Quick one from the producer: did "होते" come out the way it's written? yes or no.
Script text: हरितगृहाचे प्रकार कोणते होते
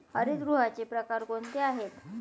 no